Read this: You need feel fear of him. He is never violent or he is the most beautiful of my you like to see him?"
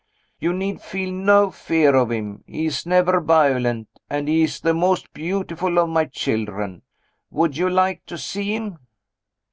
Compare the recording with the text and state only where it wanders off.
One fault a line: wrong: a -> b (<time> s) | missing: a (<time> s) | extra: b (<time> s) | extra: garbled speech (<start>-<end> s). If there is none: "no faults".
extra: no (1.1 s)
wrong: or -> and (4.1 s)
extra: children Would (6.0 s)